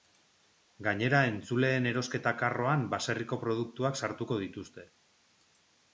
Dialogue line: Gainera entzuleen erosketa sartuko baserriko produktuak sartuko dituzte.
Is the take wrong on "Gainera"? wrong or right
right